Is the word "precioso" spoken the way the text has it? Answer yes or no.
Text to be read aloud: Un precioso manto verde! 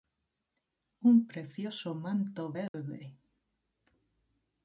yes